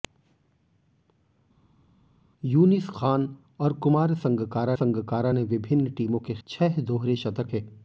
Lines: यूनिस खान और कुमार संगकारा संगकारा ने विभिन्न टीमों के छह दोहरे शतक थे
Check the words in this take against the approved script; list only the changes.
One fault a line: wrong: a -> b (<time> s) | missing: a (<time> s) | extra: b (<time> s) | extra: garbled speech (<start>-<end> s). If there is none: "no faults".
no faults